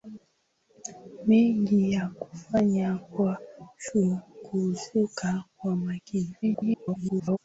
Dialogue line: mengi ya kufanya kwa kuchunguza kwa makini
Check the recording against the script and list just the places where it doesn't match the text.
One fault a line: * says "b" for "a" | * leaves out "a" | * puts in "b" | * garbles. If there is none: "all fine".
* garbles